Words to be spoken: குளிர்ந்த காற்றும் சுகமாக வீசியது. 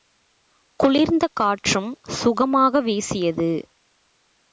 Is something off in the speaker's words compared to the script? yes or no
no